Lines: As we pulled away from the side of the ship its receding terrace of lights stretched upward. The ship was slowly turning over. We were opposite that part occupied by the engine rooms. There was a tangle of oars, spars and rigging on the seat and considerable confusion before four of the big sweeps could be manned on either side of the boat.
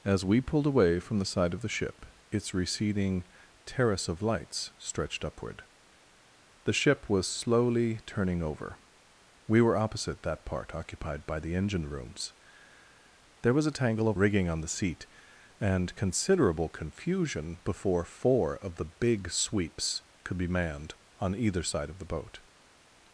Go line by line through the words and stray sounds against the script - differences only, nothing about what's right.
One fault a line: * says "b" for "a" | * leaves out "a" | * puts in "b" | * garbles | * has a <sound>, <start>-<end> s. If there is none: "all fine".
* leaves out "oars spars and"